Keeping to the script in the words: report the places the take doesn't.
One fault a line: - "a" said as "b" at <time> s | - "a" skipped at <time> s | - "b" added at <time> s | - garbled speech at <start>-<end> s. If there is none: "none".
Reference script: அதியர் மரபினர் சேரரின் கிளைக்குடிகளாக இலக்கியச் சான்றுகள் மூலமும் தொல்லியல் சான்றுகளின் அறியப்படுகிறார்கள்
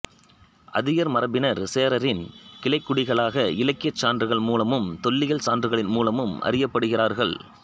- "மூலமும்" added at 5.9 s